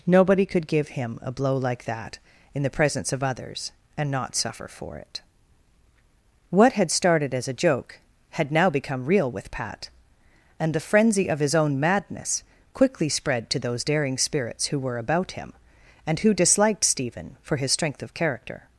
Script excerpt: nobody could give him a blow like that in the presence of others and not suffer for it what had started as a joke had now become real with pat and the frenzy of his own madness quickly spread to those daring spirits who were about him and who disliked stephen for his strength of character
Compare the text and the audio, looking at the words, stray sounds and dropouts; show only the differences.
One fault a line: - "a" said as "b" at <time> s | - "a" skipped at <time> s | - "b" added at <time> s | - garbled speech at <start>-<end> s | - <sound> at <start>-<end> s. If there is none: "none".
none